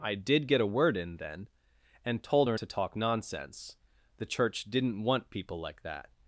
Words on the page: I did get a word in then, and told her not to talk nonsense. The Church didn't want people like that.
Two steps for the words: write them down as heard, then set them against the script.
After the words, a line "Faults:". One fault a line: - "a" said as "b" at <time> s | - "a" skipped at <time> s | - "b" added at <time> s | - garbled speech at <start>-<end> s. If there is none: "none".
I did get a word in then, and told her to talk nonsense. The Church didn't want people like that.
Faults:
- "not" skipped at 2.6 s